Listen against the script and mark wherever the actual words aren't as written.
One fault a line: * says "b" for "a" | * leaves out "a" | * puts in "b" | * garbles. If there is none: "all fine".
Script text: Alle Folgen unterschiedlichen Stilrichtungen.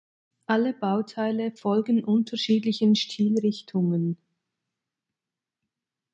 * puts in "Bauteile"